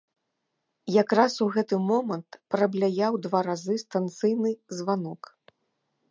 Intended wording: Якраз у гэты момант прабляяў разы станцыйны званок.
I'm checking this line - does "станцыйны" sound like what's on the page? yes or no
yes